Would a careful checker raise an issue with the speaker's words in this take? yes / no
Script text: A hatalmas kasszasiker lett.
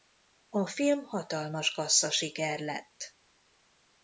yes